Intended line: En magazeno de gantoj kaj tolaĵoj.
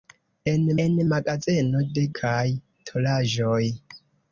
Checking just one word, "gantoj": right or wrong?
wrong